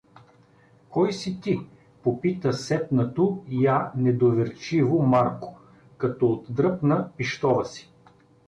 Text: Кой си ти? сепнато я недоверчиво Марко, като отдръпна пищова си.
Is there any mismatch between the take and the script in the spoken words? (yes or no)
yes